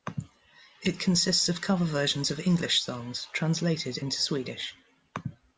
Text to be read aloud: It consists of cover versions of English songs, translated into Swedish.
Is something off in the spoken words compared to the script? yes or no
no